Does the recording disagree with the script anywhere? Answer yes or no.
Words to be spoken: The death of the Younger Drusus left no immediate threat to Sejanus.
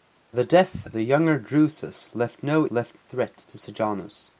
yes